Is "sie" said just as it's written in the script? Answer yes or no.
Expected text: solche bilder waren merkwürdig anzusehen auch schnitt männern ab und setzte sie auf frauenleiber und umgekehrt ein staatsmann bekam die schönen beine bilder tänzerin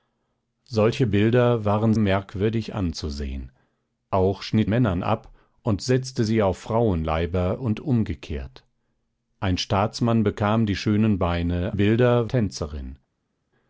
yes